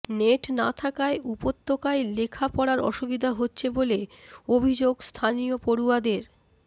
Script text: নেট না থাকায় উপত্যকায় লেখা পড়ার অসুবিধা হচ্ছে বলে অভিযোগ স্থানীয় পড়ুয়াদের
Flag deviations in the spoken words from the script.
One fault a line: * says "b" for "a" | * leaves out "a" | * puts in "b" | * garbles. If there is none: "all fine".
all fine